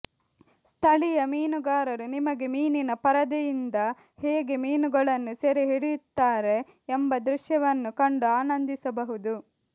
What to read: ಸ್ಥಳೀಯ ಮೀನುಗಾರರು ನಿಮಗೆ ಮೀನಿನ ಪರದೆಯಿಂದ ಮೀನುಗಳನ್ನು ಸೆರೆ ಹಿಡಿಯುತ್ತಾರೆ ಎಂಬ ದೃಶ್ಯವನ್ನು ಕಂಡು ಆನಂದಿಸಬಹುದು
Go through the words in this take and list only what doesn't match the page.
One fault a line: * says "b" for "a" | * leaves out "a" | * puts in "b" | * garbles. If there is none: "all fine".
* puts in "ಹೇಗೆ"